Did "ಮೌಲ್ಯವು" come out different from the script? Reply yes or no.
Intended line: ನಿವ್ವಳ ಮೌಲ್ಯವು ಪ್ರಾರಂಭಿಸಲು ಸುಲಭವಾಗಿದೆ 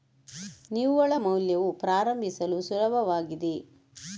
no